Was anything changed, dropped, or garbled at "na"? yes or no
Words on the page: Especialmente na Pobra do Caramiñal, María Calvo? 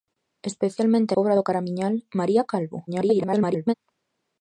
yes